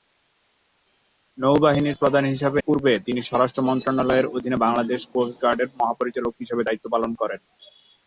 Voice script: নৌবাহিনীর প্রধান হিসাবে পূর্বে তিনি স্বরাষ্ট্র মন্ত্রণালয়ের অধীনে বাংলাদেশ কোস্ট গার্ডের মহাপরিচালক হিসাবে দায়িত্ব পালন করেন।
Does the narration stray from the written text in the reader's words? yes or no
no